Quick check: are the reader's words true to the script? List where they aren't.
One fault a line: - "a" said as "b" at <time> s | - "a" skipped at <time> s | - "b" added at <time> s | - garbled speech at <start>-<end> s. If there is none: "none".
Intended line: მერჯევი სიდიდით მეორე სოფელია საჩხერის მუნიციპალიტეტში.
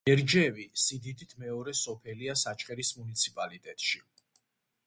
none